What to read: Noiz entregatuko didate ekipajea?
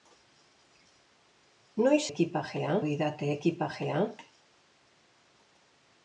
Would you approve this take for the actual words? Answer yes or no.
no